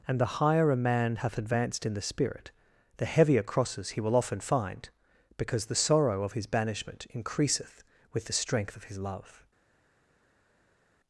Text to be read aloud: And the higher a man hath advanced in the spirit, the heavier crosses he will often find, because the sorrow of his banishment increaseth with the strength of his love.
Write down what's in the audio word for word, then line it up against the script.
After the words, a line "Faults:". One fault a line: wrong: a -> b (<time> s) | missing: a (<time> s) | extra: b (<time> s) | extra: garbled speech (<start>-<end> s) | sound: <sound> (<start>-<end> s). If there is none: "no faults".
And the higher a man hath advanced in the spirit, the heavier crosses he will often find, because the sorrow of his banishment increaseth with the strength of his love.
Faults:
no faults